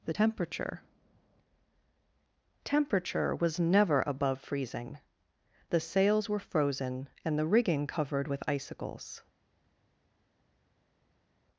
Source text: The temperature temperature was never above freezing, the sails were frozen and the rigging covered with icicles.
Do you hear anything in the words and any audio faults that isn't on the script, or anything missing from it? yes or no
no